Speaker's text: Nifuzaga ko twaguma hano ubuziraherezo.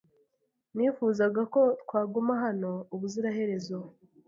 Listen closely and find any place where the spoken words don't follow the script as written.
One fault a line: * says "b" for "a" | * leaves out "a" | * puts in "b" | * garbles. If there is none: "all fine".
all fine